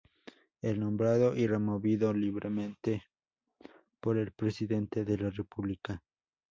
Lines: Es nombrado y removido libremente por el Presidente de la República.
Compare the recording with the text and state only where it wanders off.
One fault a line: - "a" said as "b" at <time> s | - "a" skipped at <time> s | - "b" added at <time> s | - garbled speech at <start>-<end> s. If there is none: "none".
none